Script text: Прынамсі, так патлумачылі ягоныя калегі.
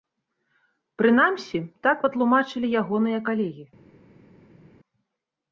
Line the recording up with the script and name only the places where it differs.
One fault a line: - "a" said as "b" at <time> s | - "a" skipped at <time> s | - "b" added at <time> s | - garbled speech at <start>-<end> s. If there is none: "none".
none